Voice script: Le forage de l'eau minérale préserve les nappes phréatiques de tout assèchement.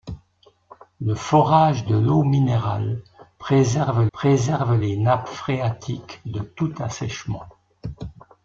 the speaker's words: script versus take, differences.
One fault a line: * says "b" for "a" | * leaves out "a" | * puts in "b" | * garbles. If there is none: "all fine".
* puts in "préserve"